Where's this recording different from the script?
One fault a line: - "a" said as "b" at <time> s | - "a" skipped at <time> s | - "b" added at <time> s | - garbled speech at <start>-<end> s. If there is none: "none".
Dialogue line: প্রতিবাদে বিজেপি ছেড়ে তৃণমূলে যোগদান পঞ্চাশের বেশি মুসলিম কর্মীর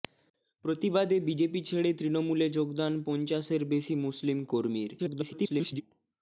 - garbled speech at 5.0-5.8 s